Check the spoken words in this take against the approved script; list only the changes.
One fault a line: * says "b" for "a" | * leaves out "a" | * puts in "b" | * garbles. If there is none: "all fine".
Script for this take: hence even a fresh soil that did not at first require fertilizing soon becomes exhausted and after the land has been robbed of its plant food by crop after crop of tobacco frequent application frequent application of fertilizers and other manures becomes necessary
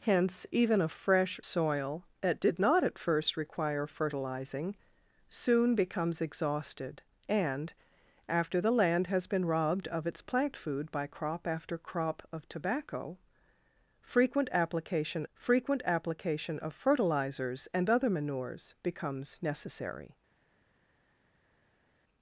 all fine